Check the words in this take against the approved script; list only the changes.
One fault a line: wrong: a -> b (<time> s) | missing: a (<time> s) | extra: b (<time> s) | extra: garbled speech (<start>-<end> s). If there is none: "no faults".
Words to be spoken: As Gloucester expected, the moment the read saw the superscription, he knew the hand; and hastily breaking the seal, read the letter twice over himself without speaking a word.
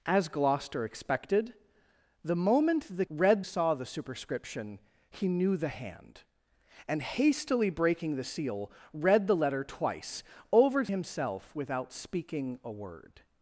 no faults